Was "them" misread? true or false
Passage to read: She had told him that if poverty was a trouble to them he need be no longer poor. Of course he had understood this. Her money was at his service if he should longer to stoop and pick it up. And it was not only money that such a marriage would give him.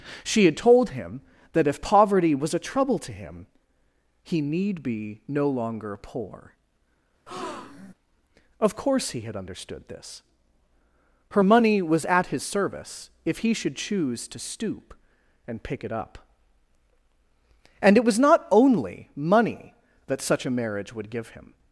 true